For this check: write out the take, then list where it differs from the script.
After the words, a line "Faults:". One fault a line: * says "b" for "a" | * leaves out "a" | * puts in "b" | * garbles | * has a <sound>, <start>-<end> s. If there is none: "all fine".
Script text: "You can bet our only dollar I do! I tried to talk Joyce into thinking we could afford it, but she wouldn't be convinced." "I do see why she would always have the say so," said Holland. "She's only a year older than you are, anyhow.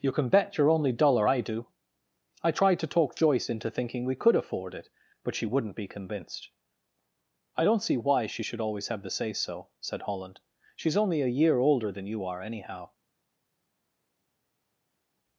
"You can bet your only dollar I do! I tried to talk Joyce into thinking we could afford it, but she wouldn't be convinced." "I don't see why she should always have the say so," said Holland. "She's only a year older than you are, anyhow.
Faults:
* says "your" for "our"
* says "don't" for "do"
* says "should" for "would"